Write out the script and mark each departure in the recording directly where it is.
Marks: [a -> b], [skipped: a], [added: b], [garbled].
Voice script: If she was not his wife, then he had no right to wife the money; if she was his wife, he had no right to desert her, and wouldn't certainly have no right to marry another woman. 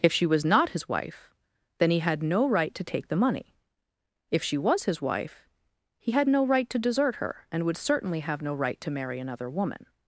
If she was not his wife, then he had no right to [wife -> take] the money; if she was his wife, he had no right to desert her, and [wouldn't -> would] certainly have no right to marry another woman.